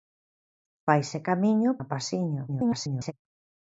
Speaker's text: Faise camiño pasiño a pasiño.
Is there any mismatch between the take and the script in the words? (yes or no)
yes